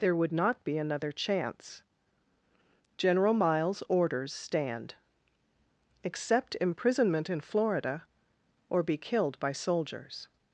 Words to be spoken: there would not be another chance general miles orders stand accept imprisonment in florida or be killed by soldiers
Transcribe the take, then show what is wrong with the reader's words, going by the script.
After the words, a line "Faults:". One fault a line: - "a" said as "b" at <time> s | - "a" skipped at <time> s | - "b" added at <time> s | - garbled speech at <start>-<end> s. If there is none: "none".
there would not be another chance general miles orders stand accept imprisonment in florida or be killed by soldiers
Faults:
none